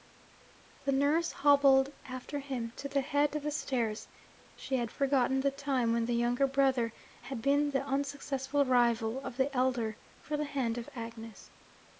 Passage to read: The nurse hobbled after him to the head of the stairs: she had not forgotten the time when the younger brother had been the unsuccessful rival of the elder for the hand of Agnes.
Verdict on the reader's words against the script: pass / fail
fail